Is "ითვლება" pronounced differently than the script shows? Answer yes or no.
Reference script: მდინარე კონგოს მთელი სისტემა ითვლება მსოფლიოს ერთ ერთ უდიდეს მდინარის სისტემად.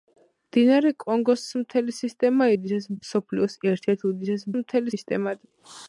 yes